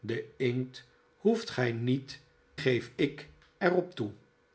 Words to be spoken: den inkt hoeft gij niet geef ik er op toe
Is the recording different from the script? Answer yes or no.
no